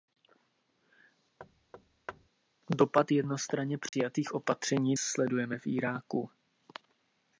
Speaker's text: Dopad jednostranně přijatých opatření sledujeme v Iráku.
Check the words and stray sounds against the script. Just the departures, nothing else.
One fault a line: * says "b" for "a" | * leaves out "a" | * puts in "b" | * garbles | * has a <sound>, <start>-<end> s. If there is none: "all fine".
* has a thud, 1.4-2.3 s
* has a dropout, 3.9-3.9 s